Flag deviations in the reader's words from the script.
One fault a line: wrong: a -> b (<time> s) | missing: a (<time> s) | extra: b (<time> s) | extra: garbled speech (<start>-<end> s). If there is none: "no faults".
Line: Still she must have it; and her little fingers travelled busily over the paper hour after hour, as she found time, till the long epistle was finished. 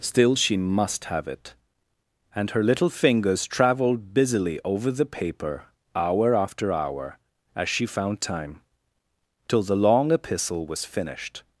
no faults